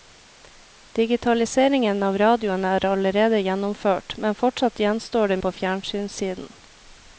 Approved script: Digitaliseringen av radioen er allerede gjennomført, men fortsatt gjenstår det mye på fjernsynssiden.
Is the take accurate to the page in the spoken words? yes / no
no